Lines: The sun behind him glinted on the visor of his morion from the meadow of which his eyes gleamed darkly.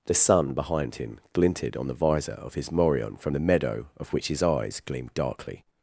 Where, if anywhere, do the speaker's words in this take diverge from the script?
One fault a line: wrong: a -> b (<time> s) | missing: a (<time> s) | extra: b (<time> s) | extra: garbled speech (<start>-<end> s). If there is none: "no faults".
no faults